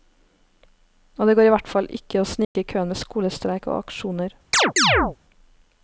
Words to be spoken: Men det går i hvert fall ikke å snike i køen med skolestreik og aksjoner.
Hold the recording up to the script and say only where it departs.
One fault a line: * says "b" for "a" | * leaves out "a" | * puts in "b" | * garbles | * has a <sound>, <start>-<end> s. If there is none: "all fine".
* says "Og" for "Men"
* has a dropout, 2.4-2.6 s
* has a chirp, 4.5-5.2 s